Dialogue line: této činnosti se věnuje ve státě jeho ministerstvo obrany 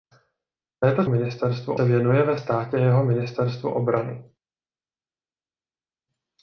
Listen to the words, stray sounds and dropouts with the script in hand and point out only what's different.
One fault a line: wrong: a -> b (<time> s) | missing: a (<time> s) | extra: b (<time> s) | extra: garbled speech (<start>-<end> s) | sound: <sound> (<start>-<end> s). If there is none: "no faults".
wrong: činnosti -> ministerstvo (1.1 s)